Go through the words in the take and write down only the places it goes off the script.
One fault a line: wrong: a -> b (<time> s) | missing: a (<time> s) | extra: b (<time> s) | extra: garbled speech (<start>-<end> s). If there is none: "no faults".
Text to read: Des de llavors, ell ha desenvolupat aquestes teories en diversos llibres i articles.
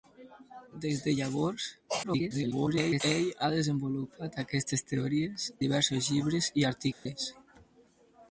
extra: garbled speech (2.0-3.0 s)
missing: en (5.5 s)